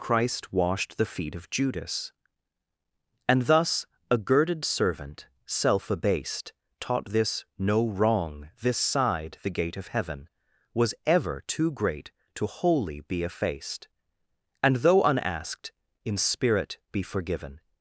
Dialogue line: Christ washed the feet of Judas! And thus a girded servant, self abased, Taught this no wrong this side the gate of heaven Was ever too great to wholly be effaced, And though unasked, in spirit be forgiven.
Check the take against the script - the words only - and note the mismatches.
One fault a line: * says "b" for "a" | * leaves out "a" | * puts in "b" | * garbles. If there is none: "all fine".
all fine